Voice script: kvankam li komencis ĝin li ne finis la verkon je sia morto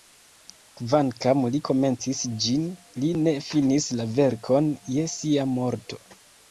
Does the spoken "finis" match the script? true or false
true